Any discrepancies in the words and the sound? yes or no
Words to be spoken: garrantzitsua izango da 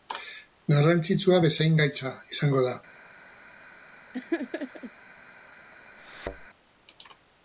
yes